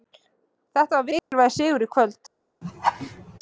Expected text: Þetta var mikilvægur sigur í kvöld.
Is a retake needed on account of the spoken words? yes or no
no